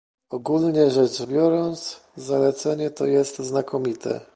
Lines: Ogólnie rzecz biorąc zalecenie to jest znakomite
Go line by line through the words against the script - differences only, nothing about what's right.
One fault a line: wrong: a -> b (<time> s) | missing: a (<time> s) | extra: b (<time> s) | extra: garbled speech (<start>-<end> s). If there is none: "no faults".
no faults